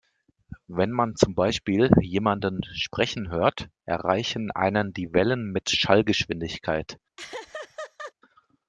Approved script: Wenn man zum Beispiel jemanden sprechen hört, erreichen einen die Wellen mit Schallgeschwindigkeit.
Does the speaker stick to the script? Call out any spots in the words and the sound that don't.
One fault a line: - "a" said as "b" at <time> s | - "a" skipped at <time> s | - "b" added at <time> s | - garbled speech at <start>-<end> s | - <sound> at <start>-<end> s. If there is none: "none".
- laugh at 7.2-8.1 s